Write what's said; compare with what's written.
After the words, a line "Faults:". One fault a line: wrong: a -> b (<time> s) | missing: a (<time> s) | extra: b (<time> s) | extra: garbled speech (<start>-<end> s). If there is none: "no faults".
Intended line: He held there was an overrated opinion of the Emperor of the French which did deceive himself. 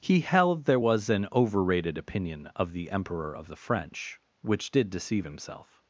He held there was an overrated opinion of the Emperor of the French which did deceive himself.
Faults:
no faults